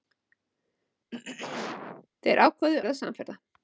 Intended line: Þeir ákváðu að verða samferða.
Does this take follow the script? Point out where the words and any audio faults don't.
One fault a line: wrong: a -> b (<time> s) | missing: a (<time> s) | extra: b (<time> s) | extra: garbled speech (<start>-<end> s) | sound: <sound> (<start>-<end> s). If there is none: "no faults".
sound: throat clearing (1.1-2.1 s)
missing: að (2.8 s)